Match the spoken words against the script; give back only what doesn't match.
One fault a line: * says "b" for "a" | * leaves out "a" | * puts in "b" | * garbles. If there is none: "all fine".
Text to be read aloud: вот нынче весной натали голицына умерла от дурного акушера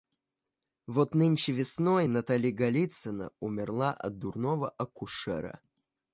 all fine